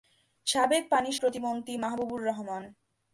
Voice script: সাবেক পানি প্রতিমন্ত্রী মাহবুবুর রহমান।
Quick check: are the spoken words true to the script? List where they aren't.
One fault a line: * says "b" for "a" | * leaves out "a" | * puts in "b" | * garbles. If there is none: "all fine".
all fine